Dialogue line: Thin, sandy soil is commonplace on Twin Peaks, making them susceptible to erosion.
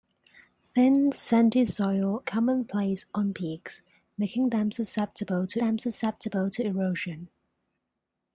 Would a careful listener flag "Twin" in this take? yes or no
yes